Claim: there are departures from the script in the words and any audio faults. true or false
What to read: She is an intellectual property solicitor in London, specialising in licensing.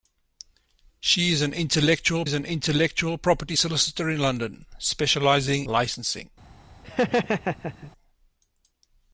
true